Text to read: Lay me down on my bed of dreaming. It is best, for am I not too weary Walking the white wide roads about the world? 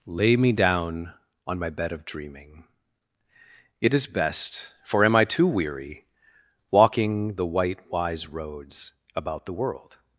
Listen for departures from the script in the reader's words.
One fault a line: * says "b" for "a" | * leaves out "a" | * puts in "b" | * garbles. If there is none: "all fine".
* leaves out "not"
* says "wise" for "wide"